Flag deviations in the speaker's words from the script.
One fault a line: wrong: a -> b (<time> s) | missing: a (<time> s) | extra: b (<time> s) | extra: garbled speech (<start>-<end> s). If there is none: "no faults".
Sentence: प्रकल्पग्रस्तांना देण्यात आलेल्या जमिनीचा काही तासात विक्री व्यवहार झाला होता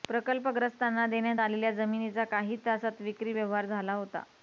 no faults